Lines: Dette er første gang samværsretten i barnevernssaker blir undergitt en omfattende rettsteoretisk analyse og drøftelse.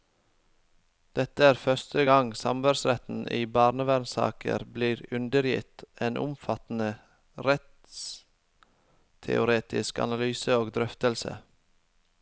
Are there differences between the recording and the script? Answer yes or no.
no